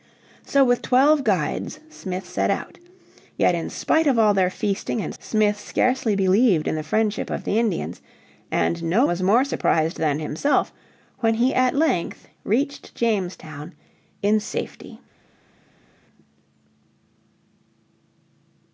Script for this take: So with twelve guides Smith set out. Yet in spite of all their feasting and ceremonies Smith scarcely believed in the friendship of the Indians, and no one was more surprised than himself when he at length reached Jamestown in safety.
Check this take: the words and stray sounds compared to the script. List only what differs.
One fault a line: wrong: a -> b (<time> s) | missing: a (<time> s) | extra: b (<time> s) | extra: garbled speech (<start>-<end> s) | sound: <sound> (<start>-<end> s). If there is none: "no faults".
missing: ceremonies (5.1 s)
missing: one (9.1 s)